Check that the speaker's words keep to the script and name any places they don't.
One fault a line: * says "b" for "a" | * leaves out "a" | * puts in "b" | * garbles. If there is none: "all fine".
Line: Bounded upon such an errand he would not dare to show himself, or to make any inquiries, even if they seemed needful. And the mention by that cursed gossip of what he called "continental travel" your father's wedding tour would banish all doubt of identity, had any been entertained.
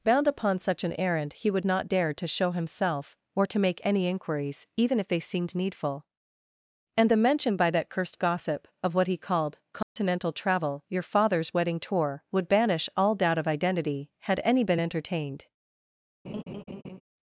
* says "Bound" for "Bounded"